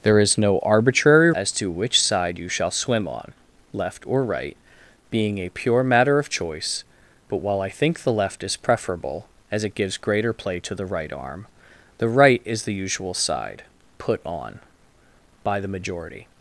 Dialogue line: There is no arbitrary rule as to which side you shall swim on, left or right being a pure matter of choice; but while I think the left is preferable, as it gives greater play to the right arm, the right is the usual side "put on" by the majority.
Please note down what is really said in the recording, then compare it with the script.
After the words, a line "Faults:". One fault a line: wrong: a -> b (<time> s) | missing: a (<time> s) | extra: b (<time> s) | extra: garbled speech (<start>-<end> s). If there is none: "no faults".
There is no arbitrary as to which side you shall swim on, left or right being a pure matter of choice; but while I think the left is preferable, as it gives greater play to the right arm, the right is the usual side "put on" by the majority.
Faults:
missing: rule (1.3 s)